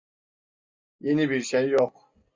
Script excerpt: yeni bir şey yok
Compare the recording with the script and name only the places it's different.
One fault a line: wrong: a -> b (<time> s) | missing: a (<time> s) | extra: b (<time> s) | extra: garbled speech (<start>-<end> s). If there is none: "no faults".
no faults